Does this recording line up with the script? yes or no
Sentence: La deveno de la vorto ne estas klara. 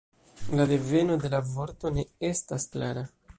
yes